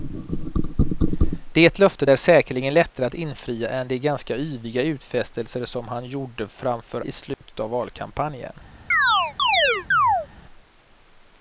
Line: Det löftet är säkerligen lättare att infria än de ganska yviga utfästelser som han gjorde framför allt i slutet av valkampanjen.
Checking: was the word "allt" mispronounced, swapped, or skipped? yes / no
yes